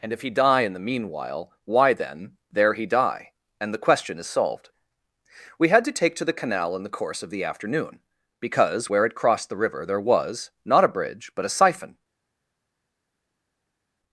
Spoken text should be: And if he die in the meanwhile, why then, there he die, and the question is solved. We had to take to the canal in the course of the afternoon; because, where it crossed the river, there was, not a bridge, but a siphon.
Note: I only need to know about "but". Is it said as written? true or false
true